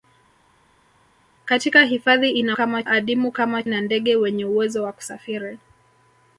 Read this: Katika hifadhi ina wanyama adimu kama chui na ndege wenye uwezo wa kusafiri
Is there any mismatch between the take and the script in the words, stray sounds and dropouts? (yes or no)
yes